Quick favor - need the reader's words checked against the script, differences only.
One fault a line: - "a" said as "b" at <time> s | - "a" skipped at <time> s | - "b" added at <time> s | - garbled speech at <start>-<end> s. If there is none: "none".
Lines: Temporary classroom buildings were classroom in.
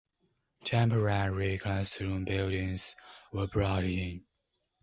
- "classroom" said as "brought" at 3.5 s